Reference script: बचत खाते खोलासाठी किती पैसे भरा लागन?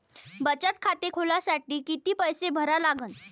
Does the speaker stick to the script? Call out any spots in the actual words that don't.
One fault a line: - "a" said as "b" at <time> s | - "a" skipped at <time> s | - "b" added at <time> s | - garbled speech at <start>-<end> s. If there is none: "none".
none